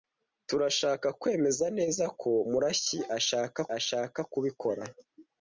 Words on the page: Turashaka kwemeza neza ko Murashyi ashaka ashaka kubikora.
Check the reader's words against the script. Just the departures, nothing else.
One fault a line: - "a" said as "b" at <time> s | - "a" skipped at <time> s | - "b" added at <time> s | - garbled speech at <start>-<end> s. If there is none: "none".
none